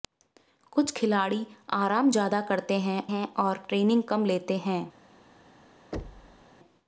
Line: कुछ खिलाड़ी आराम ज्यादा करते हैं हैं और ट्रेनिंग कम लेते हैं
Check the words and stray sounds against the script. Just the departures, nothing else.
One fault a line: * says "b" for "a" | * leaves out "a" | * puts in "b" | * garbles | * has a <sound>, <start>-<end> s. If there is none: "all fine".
* has a thud, 5.9-6.5 s